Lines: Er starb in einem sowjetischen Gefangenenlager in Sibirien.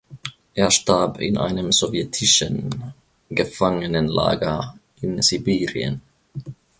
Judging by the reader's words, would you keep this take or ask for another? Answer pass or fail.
pass